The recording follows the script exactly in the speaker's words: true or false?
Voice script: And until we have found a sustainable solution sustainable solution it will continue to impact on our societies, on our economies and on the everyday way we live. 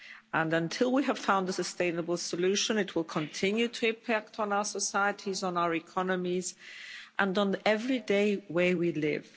false